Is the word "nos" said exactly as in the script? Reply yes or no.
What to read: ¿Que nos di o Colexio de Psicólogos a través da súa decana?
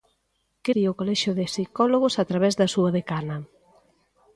no